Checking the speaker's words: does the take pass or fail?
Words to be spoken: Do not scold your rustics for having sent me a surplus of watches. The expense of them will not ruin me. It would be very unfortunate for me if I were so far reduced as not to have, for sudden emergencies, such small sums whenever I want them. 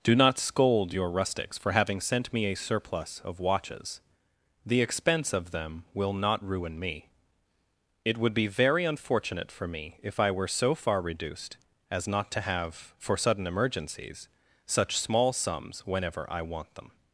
pass